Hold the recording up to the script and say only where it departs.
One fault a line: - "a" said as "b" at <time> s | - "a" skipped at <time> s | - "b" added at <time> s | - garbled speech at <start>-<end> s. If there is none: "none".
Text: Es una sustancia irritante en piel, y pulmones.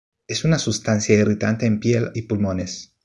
none